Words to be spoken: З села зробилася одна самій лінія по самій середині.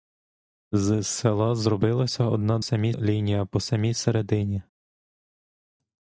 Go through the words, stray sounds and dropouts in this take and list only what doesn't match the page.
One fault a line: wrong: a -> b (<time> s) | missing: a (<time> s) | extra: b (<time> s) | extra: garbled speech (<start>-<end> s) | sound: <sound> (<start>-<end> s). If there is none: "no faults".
no faults